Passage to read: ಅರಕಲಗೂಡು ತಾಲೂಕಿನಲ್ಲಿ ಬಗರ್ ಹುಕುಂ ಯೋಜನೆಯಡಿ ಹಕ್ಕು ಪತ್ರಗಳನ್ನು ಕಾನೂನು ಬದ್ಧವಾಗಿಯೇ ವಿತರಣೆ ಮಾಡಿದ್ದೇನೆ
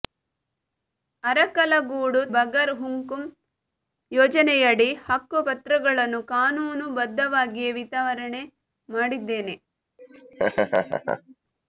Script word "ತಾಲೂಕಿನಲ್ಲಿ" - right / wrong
wrong